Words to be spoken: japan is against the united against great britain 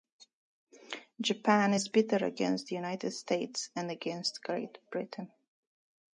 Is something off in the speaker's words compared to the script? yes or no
yes